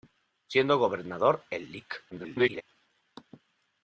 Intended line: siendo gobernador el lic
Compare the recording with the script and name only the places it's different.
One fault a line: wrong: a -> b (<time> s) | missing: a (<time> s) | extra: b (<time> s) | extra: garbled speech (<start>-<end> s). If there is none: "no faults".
extra: garbled speech (2.1-2.6 s)